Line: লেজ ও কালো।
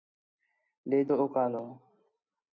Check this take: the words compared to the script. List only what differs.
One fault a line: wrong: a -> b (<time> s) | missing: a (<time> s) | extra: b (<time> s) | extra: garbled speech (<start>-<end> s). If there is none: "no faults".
no faults